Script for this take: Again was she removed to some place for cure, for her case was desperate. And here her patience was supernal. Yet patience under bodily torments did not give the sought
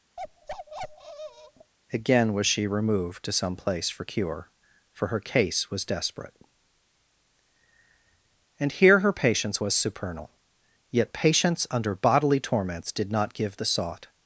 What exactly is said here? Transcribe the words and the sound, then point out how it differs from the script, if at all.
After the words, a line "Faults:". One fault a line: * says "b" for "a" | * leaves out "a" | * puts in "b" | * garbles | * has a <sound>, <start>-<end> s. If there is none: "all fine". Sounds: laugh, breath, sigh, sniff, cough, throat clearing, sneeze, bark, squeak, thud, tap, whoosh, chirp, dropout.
Again was she removed to some place for cure, for her case was desperate. And here her patience was supernal. Yet patience under bodily torments did not give the sought
Faults:
* has a bark, 0.2-1.7 s